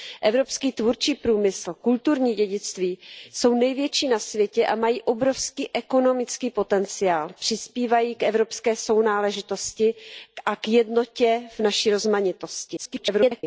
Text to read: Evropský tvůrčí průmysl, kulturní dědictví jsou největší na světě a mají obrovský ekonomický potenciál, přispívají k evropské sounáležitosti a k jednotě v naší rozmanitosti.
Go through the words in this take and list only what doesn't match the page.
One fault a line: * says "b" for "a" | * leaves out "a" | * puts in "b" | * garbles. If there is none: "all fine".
* garbles